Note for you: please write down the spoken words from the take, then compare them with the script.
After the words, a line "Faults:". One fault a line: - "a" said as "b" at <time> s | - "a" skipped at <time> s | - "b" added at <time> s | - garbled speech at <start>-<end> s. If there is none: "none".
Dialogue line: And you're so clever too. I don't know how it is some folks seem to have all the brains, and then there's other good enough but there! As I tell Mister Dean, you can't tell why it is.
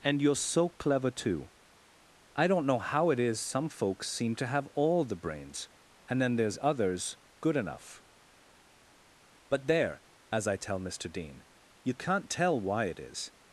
And you're so clever too. I don't know how it is some folks seem to have all the brains, and then there's others good enough but there! As I tell Mister Dean, you can't tell why it is.
Faults:
- "other" said as "others" at 6.6 s